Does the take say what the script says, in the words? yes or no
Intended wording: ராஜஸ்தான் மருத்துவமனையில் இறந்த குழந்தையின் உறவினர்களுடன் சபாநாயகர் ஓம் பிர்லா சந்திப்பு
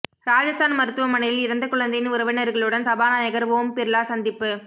yes